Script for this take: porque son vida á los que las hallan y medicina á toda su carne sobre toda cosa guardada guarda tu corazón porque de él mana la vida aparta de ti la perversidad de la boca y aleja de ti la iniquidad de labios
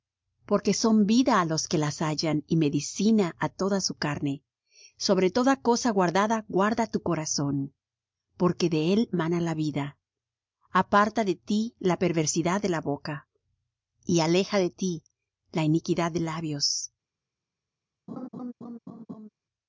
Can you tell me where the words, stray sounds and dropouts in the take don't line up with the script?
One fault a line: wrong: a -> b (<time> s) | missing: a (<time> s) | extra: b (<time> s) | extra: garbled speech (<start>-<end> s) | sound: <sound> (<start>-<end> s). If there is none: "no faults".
sound: laugh (18.1-19.3 s)